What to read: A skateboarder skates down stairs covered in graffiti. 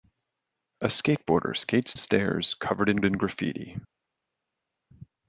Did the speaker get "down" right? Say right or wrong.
wrong